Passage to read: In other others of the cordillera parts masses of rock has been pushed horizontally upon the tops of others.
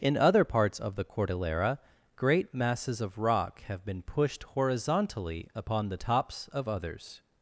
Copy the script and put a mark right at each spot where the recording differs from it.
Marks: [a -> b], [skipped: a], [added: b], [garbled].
In other [others -> parts] of the cordillera [parts -> great] masses of rock [has -> have] been pushed horizontally upon the tops of others.